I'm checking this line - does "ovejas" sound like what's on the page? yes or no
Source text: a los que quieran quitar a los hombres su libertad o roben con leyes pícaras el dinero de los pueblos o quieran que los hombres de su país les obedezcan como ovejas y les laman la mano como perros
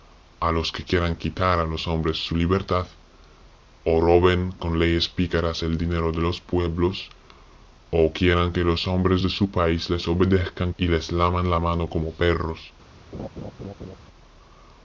no